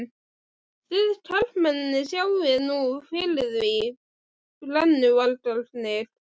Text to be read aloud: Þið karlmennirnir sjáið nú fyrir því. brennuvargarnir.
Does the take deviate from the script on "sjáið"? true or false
false